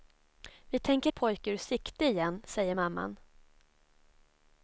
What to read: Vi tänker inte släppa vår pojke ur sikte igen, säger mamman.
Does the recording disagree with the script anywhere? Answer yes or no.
yes